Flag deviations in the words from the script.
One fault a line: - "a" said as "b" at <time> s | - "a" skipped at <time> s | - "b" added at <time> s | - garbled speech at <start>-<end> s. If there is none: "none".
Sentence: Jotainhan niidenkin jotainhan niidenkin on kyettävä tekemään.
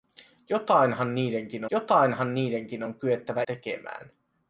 none